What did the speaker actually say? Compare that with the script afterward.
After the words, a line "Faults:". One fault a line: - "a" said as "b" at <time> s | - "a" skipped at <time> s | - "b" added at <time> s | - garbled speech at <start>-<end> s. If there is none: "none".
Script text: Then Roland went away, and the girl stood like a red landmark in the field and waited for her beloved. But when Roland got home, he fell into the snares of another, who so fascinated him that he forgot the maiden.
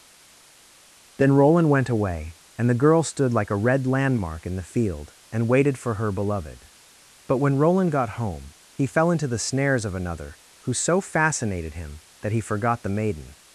Then Roland went away, and the girl stood like a red landmark in the field and waited for her beloved. But when Roland got home, he fell into the snares of another, who so fascinated him that he forgot the maiden.
Faults:
none